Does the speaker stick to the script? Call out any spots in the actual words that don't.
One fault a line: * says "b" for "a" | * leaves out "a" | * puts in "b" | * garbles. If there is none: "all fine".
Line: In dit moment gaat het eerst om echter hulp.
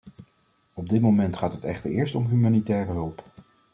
* says "Op" for "In"
* puts in "echter"
* says "humanitaire" for "echter"